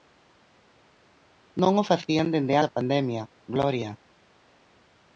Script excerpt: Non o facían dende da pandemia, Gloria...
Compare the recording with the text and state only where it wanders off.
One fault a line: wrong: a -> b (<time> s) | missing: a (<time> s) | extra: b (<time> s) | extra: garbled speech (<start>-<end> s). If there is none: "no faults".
no faults